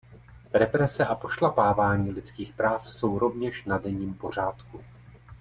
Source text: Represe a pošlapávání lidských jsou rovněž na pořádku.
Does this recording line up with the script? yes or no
no